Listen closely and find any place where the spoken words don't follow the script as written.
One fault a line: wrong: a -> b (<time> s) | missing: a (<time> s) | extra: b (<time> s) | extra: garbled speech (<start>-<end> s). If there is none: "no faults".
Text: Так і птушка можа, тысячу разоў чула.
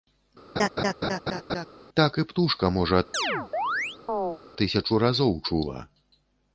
no faults